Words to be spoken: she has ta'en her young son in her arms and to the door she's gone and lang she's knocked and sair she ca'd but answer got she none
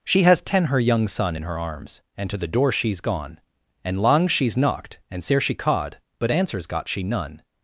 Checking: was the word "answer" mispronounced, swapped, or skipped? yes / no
yes